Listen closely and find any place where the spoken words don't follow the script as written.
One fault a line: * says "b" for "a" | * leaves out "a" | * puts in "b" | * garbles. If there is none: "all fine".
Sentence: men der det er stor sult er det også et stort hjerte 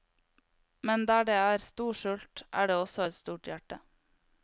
all fine